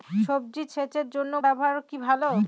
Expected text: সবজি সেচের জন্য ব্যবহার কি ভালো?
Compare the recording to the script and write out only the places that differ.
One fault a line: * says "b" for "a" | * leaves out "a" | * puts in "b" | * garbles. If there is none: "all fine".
all fine